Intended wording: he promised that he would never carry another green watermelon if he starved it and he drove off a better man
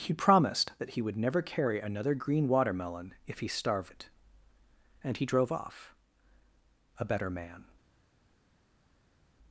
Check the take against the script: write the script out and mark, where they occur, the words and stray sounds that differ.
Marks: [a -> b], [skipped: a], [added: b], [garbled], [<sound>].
he promised that he would never carry another green watermelon if he starved it and he drove off a better man